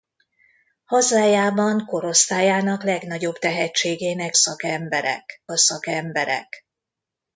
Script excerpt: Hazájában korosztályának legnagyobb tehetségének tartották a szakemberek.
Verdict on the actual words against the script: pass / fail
fail